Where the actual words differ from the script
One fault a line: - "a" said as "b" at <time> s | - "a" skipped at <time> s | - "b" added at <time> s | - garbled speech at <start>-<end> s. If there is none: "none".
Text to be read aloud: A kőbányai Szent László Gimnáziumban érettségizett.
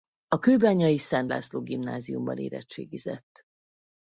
none